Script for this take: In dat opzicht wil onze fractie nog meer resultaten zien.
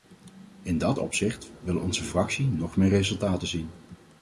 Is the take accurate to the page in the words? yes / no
yes